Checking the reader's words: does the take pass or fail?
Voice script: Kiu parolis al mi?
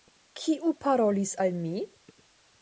pass